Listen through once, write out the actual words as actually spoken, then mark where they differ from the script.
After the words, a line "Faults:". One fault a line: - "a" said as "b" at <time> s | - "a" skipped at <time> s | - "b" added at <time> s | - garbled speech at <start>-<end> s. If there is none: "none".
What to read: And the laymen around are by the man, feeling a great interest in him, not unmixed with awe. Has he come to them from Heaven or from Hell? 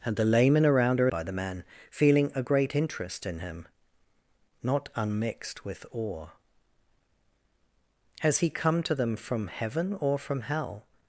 And the laymen around are by the man, feeling a great interest in him, not unmixed with awe. Has he come to them from Heaven or from Hell?
Faults:
none